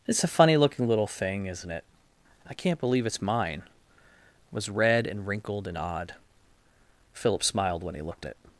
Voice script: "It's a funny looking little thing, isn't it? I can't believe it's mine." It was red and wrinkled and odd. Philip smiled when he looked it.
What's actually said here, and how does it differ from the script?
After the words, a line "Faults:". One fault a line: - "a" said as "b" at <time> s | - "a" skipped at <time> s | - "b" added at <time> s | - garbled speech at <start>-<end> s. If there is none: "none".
"It's a funny looking little thing, isn't it? I can't believe it's mine." It was red and wrinkled and odd. Philip smiled when he looked it.
Faults:
none